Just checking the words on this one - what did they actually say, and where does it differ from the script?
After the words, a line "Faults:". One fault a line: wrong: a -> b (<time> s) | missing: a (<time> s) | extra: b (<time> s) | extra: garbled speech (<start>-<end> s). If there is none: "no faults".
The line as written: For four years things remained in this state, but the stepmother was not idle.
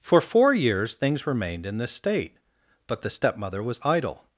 For four years things remained in this state, but the stepmother was idle.
Faults:
missing: not (3.8 s)